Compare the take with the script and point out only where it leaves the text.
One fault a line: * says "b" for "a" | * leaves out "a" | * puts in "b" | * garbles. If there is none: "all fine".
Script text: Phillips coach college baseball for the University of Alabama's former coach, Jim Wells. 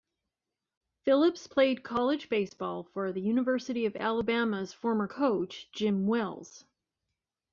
* says "played" for "coach"